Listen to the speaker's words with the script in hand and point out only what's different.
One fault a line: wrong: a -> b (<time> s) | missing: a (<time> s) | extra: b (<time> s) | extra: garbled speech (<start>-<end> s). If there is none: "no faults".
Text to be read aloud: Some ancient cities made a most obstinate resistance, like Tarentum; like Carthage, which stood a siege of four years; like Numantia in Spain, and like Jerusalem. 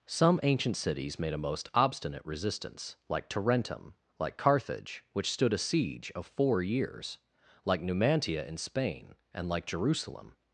no faults